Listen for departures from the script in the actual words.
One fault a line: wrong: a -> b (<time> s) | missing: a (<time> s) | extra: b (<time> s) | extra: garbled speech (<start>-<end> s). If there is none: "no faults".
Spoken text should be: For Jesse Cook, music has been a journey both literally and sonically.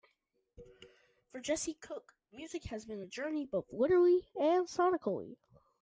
no faults